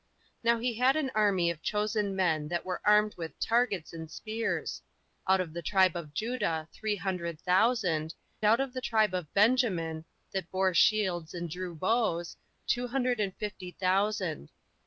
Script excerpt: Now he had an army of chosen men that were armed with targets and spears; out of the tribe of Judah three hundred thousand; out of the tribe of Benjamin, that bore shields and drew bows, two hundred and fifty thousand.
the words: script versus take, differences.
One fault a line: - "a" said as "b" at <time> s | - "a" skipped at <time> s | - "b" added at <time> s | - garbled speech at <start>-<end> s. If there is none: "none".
none